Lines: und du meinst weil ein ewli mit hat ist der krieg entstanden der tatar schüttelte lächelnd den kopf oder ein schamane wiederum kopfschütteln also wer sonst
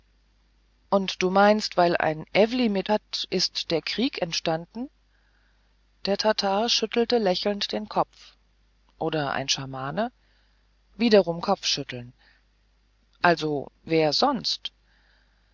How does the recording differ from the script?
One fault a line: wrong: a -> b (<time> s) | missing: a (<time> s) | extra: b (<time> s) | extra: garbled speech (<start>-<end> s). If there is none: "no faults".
no faults